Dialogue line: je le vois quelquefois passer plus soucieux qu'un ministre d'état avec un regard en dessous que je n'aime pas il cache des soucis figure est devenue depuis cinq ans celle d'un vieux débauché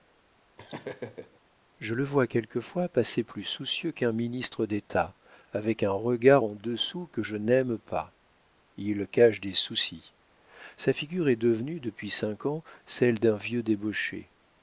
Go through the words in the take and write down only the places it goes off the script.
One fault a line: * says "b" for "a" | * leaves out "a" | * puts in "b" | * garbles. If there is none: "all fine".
* puts in "sa"